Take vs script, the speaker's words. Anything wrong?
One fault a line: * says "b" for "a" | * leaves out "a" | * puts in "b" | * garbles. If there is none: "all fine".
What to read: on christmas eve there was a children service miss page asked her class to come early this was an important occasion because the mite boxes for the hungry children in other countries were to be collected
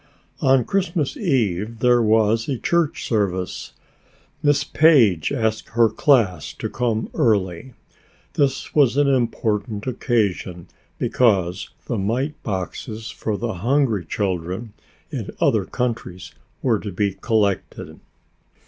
* says "church" for "children"